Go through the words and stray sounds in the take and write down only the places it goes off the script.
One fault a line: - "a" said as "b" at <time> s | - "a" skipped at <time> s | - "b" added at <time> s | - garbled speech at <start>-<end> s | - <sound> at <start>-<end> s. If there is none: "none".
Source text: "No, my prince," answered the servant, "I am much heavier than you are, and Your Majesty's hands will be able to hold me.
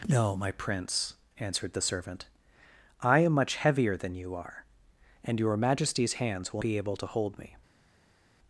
none